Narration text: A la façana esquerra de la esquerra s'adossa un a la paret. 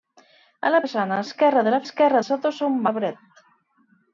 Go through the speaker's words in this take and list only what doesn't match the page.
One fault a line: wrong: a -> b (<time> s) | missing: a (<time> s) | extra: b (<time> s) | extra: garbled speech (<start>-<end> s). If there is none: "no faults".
no faults